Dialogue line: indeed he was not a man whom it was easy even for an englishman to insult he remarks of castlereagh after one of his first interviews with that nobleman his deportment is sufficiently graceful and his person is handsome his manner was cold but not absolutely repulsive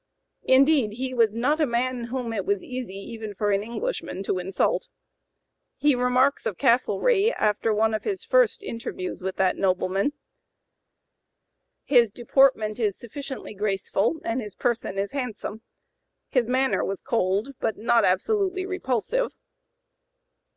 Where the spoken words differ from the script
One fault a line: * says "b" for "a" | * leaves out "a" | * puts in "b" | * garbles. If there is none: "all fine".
all fine